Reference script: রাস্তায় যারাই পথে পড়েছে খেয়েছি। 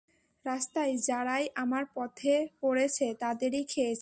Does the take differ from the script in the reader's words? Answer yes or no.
yes